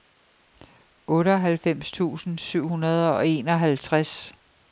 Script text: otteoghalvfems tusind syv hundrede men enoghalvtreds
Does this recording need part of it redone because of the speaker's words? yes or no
yes